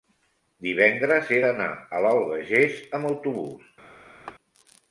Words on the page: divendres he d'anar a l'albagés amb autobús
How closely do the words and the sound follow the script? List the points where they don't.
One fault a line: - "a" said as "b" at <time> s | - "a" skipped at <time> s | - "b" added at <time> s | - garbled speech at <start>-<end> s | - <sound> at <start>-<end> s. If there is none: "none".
- laugh at 4.3-4.4 s